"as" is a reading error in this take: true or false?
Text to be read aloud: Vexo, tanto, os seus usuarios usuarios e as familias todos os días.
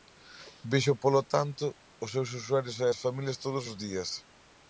false